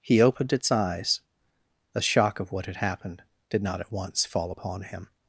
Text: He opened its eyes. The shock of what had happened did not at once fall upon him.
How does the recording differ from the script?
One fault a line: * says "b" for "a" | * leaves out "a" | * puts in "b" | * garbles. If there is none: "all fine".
all fine